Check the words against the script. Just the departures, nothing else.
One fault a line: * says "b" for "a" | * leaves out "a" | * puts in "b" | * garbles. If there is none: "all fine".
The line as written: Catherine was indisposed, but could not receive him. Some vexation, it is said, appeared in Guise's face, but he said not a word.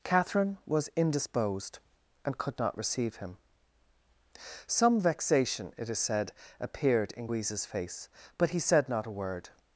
* says "and" for "but"